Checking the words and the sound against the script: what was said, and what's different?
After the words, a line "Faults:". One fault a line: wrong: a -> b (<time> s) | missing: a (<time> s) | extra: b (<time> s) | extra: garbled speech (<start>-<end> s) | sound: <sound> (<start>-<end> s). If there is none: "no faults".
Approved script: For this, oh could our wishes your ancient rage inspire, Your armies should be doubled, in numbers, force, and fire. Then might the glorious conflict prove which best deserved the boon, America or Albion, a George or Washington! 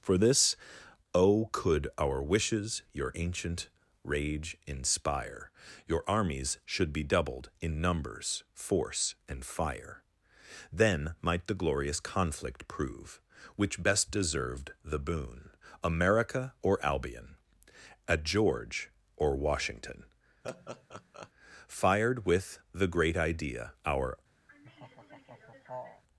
For this, oh could our wishes your ancient rage inspire, Your armies should be doubled, in numbers, force, and fire. Then might the glorious conflict prove which best deserved the boon, America or Albion, a George or Washington! Fired with the great idea, our
Faults:
sound: laugh (20.4-21.3 s)
extra: Fired with the great idea our (21.7 s)
sound: laugh (24.5-26.0 s)